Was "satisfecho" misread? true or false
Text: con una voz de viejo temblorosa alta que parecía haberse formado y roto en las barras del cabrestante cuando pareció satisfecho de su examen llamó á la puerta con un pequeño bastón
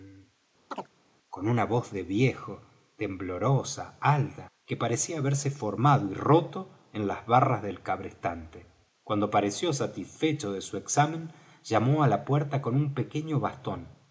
false